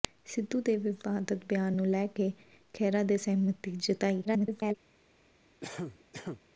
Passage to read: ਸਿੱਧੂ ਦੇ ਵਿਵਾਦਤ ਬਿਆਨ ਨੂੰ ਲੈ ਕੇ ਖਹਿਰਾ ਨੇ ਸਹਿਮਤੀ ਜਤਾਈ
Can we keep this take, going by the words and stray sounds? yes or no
no